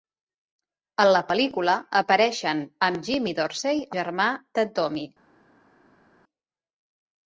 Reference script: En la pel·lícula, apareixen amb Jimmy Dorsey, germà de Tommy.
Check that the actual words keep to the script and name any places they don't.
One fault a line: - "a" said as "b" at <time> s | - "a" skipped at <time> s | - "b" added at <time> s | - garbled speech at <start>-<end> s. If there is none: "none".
none